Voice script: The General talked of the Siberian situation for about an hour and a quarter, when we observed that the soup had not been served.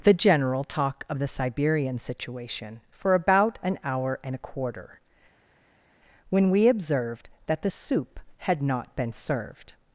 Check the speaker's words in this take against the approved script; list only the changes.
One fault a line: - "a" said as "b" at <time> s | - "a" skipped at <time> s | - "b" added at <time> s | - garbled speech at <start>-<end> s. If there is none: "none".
- "talked" said as "talk" at 0.6 s